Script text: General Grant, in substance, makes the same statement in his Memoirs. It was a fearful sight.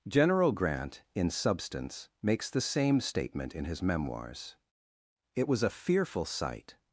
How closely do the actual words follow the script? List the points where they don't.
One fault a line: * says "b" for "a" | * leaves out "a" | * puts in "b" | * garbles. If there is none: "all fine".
all fine